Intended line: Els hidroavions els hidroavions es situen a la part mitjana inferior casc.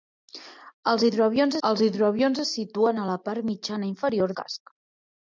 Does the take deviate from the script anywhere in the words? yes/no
no